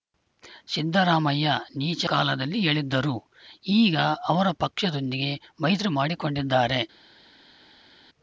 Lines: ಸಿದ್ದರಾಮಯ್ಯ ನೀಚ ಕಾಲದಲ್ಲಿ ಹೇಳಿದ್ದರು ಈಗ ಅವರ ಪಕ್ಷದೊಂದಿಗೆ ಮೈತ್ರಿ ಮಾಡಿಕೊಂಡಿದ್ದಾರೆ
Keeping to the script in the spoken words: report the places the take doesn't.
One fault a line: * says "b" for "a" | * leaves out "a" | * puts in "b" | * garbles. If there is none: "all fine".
all fine